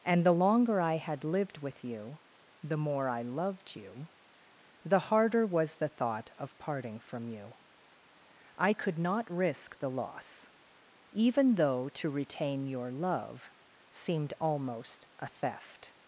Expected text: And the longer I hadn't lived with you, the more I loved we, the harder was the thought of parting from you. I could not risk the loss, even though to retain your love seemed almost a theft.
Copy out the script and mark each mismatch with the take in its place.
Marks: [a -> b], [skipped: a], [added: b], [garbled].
And the longer I [hadn't -> had] lived with you, the more I loved [we, -> you] the harder was the thought of parting from you. I could not risk the loss, even though to retain your love seemed almost a theft.